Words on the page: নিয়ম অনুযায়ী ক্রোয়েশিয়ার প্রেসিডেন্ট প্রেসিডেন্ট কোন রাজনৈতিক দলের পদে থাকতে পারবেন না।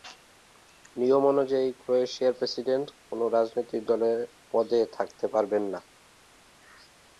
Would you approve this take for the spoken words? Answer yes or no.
no